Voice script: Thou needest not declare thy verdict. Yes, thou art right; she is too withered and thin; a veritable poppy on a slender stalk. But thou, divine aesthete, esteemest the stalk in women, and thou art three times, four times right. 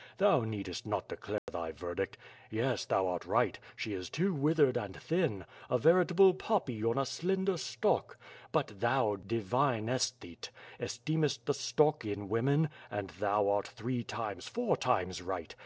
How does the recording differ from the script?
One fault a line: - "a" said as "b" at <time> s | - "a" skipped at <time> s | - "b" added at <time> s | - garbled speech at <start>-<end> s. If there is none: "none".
none